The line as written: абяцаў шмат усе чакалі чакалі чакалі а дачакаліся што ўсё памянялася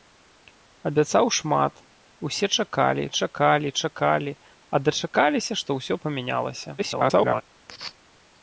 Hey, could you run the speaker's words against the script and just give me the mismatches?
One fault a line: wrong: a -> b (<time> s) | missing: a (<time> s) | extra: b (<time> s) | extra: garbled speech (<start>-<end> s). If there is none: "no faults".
extra: garbled speech (6.8-7.4 s)